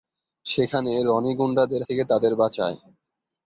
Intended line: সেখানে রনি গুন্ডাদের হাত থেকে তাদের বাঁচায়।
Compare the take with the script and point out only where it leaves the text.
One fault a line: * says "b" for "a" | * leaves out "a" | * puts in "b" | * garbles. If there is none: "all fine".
* leaves out "হাত"